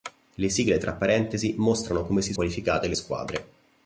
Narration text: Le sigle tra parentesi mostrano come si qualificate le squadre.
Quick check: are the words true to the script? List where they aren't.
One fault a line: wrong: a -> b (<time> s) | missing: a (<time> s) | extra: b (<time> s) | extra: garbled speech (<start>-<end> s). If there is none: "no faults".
no faults